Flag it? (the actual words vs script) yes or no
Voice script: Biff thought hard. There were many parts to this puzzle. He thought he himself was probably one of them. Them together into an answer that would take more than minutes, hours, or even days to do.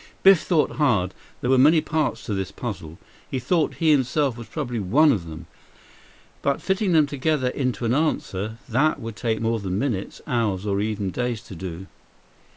yes